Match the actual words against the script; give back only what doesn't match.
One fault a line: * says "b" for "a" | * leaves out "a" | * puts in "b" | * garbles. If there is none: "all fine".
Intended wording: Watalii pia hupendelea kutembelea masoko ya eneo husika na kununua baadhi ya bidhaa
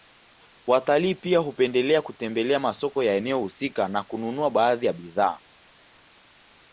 all fine